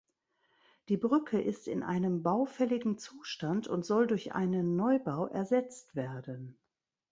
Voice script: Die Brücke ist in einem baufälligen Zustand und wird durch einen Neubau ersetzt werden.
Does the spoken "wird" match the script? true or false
false